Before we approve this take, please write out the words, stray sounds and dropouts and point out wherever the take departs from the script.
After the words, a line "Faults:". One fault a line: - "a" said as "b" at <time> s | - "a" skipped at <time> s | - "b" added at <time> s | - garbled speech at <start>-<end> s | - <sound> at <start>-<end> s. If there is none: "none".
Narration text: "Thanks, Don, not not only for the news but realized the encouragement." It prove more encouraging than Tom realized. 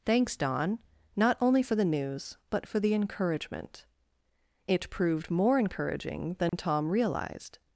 "Thanks, Don, not only for the news but for the encouragement." It proved more encouraging than Tom realized.
Faults:
- "not" skipped at 1.4 s
- "realized" said as "for" at 2.6 s
- "prove" said as "proved" at 4.9 s
- dropout at 6.5-6.5 s